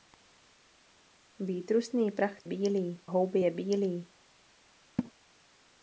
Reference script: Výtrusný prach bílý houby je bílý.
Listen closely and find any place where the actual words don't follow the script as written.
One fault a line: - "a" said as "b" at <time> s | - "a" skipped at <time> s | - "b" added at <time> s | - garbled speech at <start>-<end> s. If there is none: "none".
none